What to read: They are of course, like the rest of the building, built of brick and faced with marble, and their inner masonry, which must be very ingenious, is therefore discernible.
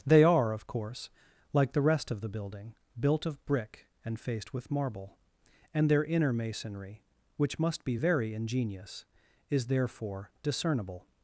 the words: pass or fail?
pass